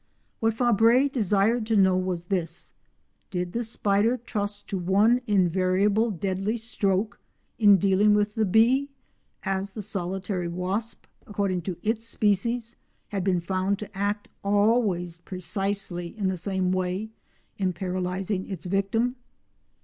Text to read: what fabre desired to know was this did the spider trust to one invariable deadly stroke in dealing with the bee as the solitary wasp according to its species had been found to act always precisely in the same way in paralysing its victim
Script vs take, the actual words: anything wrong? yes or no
no